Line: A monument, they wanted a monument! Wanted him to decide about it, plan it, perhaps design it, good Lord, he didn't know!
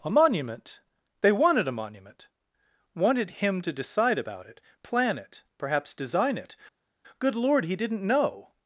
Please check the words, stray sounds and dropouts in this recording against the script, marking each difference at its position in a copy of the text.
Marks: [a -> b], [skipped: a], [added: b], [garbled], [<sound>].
A monument, they wanted a monument! Wanted him to decide about it, plan it, perhaps design it, good Lord, he didn't know!